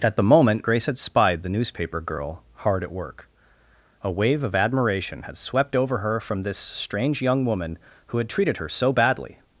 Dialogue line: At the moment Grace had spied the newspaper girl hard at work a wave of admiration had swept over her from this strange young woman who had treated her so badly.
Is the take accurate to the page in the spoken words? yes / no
yes